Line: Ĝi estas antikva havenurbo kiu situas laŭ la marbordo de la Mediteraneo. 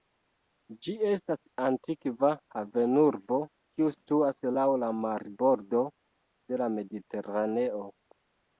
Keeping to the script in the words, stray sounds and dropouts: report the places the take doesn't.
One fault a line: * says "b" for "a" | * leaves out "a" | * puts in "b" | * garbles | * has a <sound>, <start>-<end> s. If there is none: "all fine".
all fine